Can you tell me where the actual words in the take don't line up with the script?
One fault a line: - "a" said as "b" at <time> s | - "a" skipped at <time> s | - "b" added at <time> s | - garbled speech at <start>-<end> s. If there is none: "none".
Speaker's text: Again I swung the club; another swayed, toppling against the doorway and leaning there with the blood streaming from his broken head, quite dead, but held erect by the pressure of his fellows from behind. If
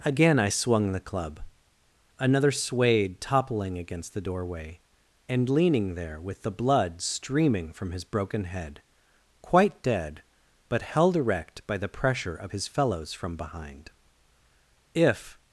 none